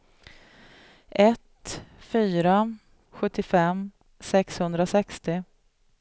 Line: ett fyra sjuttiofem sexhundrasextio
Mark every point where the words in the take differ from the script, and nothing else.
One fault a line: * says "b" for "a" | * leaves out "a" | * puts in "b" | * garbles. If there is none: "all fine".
all fine